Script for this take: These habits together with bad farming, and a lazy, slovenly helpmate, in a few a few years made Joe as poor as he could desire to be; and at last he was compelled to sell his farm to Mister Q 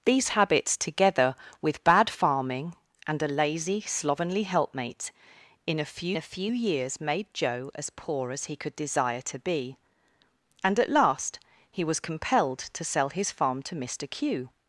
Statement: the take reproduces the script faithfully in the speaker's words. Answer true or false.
true